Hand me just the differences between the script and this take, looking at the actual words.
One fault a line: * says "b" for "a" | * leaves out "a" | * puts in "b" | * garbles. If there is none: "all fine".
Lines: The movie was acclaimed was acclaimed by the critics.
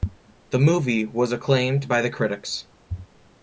* leaves out "was acclaimed"